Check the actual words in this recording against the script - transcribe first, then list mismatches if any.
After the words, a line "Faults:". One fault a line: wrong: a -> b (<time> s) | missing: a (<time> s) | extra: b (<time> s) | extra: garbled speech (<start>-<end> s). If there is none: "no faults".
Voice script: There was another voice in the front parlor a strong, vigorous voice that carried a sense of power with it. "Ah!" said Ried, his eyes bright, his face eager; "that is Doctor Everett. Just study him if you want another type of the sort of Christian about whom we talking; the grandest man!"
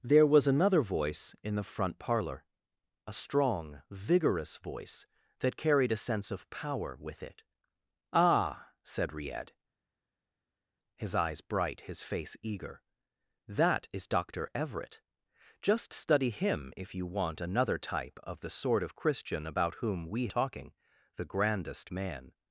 There was another voice in the front parlor a strong, vigorous voice that carried a sense of power with it. "Ah!" said Ried, his eyes bright, his face eager; "that is Doctor Everett. Just study him if you want another type of the sort of Christian about whom we talking; the grandest man!"
Faults:
no faults